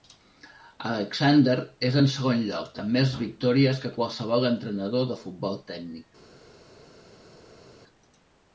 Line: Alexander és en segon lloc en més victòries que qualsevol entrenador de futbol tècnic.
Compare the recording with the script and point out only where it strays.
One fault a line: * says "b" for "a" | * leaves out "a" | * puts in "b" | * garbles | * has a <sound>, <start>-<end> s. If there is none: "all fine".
* says "amb" for "en"